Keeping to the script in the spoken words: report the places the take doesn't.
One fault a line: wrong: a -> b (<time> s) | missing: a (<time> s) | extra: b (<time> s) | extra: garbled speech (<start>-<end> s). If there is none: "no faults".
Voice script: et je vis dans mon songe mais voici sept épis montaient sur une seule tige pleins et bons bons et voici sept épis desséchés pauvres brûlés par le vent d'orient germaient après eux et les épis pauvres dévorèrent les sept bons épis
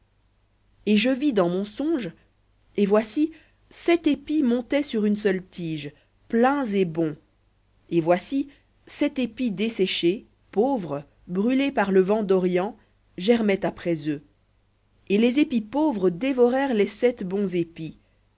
wrong: mais -> et (2.8 s)
missing: bons (7.2 s)